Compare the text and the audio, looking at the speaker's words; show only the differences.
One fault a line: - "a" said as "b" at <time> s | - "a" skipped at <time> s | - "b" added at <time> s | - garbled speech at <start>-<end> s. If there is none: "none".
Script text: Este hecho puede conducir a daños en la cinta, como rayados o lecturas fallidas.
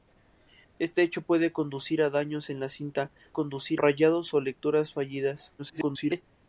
- "como" said as "conducir" at 3.3 s
- garbled speech at 5.6-6.2 s